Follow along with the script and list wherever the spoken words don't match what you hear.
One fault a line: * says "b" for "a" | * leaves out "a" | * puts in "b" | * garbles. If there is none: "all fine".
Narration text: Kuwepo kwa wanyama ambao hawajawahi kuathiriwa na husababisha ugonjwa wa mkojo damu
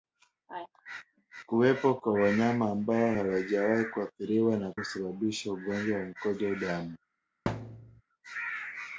all fine